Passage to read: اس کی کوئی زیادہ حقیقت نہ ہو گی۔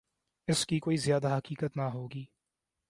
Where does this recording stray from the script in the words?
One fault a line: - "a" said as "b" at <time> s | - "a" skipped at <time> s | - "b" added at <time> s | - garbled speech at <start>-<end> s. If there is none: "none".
none